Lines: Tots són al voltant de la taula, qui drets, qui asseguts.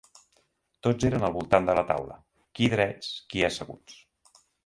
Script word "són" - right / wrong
wrong